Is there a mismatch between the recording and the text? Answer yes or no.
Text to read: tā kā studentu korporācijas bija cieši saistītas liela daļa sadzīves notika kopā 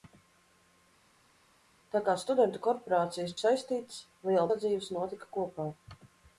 yes